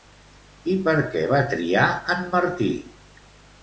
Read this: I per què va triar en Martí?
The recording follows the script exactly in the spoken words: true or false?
true